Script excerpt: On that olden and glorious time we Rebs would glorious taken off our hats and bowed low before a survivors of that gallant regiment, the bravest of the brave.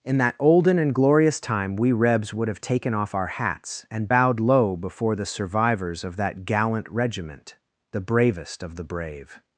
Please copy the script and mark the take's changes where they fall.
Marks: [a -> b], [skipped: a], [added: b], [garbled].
[On -> In] that olden and glorious time we Rebs would [glorious -> have] taken off our hats and bowed low before [a -> the] survivors of that gallant regiment, the bravest of the brave.